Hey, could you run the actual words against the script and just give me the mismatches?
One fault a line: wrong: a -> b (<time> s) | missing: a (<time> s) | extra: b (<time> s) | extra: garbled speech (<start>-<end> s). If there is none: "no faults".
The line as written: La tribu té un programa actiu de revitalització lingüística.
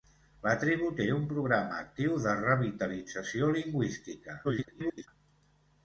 extra: garbled speech (4.4-5.1 s)